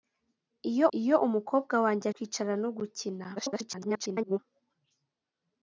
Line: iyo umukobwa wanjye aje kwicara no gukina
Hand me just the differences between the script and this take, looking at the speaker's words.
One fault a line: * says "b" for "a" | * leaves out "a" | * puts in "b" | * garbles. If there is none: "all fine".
* puts in "iyo"
* leaves out "aje"
* garbles